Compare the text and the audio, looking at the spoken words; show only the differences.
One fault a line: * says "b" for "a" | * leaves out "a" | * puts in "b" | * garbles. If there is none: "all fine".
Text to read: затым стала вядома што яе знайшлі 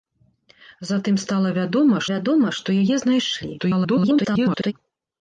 * puts in "вядома"
* garbles